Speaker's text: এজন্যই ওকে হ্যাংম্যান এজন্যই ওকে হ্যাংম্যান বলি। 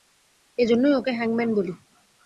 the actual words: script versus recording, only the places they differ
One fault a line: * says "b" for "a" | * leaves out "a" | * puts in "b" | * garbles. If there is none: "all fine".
* leaves out "এজন্যই ওকে হ্যাংম্যান"